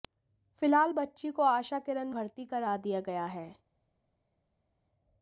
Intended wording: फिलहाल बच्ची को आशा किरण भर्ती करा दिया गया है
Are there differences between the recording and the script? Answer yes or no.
no